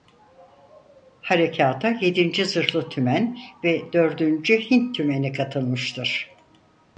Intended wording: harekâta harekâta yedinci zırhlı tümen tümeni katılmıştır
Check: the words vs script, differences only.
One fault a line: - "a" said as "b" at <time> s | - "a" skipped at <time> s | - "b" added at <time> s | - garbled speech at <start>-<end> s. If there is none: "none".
- "harekâta" skipped at 1.9 s
- "ve dördüncü hint" added at 3.6 s